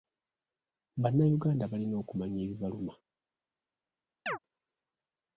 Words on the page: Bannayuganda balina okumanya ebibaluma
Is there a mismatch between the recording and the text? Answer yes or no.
no